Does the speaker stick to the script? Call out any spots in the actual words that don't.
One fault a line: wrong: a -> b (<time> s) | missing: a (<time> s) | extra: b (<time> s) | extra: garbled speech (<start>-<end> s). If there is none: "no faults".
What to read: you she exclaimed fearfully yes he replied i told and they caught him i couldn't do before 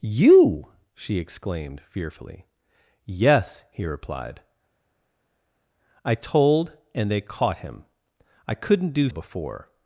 no faults